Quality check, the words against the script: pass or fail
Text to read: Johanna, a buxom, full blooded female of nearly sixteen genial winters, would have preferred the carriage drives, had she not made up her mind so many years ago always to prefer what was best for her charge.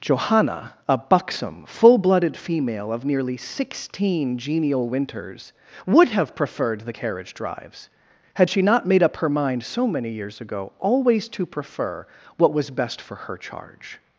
pass